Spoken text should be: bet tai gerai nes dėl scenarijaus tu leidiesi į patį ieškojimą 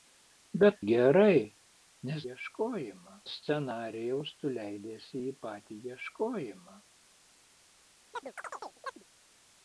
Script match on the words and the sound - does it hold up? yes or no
no